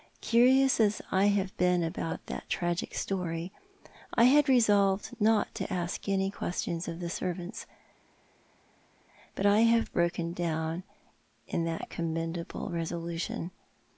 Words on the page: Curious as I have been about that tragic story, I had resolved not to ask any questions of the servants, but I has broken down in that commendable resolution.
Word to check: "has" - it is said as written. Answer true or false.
false